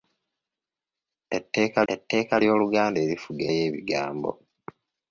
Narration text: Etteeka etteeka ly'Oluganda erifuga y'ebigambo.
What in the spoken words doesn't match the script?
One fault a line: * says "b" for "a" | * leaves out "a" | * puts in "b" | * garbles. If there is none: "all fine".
all fine